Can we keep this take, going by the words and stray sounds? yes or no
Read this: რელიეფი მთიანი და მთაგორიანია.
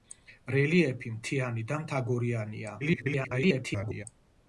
no